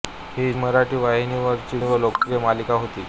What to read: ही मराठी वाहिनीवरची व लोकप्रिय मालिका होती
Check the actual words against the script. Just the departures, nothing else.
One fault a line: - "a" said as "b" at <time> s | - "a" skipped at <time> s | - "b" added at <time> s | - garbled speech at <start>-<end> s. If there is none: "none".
none